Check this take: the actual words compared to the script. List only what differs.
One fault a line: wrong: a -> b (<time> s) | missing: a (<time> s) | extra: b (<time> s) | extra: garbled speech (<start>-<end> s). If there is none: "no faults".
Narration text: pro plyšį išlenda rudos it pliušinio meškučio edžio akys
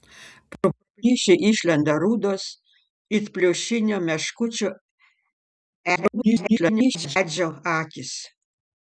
extra: garbled speech (6.0-7.2 s)